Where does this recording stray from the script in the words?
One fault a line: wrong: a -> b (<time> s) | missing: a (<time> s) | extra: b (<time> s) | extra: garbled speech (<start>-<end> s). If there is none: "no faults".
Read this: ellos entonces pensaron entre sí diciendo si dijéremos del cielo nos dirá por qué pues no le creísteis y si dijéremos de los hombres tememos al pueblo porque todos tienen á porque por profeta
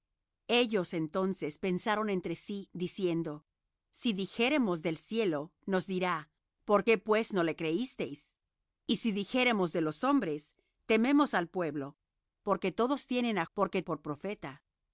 no faults